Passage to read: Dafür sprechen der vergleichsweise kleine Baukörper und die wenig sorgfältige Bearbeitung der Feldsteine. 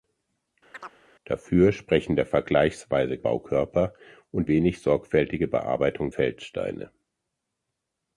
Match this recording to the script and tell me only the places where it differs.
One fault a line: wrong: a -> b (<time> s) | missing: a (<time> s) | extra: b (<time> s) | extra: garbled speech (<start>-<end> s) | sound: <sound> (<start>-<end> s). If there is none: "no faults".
sound: chirp (0.7-1.0 s)
missing: kleine (3.2 s)
missing: die (4.5 s)
missing: der (6.1 s)